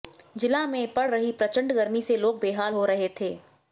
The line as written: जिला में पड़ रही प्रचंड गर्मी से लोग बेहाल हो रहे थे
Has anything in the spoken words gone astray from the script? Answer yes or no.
no